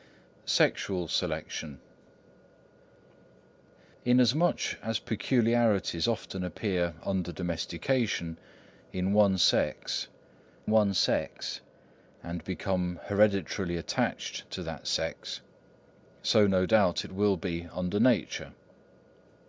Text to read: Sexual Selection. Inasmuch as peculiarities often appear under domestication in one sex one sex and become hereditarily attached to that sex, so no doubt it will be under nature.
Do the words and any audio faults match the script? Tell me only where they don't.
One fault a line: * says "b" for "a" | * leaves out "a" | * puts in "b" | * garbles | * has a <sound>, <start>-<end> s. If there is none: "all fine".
all fine